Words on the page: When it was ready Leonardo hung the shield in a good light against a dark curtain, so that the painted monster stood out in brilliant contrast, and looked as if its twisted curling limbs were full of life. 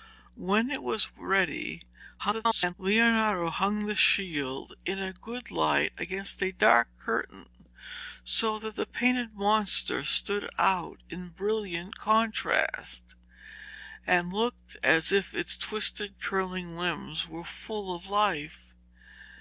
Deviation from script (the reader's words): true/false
true